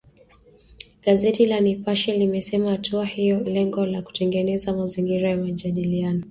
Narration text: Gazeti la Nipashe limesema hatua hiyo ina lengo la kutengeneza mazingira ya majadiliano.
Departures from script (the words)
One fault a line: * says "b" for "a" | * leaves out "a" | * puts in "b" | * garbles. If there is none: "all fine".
* leaves out "ina"